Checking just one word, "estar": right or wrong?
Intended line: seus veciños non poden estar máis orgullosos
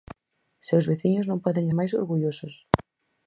wrong